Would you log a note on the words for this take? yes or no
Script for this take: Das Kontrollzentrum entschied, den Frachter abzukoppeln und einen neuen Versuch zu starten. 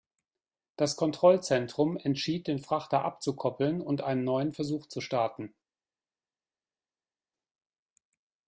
no